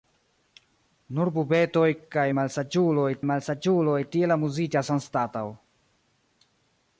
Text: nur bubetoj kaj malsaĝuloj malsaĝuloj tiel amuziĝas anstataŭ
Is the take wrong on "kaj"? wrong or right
right